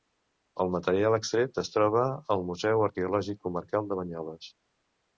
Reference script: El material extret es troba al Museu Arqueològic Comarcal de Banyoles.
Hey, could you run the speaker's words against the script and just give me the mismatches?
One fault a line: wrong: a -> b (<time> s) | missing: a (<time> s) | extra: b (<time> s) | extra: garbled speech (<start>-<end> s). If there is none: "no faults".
no faults